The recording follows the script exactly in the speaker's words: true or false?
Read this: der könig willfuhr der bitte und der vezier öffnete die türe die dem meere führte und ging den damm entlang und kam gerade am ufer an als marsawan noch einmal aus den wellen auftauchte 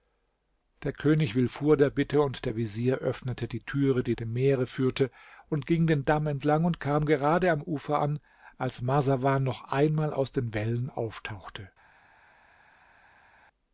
true